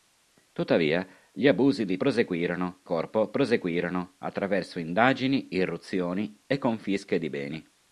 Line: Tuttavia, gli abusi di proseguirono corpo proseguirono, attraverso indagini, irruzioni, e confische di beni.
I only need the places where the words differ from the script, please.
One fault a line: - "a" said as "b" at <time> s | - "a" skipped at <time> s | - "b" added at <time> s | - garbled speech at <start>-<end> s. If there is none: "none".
none